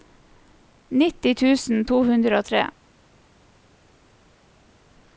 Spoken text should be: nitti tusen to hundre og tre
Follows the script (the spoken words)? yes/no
yes